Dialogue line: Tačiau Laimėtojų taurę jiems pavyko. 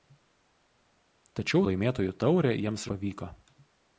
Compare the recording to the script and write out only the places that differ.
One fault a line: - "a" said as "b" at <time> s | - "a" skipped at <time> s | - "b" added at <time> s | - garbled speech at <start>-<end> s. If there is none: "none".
none